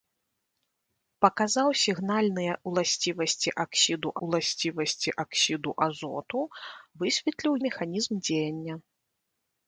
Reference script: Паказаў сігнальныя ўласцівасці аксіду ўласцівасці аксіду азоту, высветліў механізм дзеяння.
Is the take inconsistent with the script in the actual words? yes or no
no